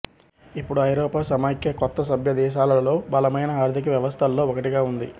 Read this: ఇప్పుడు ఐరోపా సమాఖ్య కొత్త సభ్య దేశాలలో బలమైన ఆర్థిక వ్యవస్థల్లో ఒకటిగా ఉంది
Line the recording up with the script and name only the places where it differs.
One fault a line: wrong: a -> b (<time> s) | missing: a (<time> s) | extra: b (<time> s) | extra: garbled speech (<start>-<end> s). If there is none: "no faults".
no faults